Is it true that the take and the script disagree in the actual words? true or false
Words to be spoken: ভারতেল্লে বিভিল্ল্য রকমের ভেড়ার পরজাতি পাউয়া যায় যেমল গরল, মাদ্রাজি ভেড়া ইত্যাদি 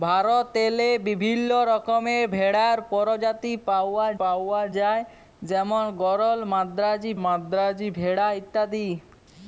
true